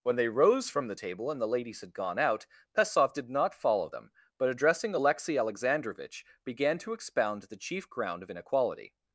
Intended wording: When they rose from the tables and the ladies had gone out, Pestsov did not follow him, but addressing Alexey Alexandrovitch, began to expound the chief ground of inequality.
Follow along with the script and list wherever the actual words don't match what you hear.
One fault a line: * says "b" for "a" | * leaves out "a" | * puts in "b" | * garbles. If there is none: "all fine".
* says "table" for "tables"
* says "them" for "him"